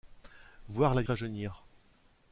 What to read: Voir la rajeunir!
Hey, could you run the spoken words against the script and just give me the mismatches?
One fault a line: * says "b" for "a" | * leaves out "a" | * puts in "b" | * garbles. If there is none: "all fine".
all fine